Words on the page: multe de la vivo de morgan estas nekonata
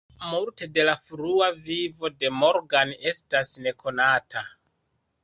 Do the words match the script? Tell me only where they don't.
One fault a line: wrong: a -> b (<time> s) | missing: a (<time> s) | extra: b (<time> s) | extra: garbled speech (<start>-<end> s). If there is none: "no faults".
extra: frua (1.0 s)